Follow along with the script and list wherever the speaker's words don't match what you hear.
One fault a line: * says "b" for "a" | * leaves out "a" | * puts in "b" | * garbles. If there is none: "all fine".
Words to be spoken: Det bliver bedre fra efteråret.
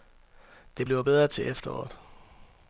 * says "til" for "fra"